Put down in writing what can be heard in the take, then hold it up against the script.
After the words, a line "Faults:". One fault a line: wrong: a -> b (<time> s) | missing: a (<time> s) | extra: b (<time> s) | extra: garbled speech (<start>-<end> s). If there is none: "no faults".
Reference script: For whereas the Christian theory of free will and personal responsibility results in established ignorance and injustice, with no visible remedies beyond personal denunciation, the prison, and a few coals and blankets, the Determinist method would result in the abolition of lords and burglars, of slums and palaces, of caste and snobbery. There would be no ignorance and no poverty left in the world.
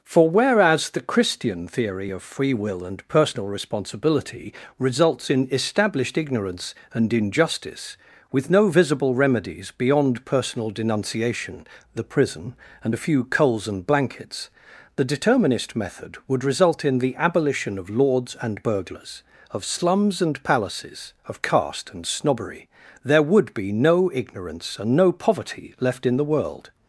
For whereas the Christian theory of free will and personal responsibility results in established ignorance and injustice, with no visible remedies beyond personal denunciation, the prison, and a few coals and blankets, the Determinist method would result in the abolition of lords and burglars, of slums and palaces, of caste and snobbery. There would be no ignorance and no poverty left in the world.
Faults:
no faults